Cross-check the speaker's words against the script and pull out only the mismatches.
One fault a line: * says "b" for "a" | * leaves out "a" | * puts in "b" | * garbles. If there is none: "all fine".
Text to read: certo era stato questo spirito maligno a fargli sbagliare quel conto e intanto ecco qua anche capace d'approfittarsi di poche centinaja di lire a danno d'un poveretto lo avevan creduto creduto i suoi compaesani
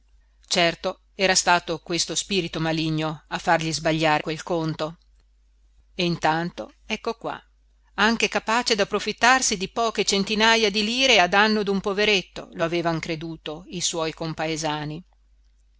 * leaves out "creduto"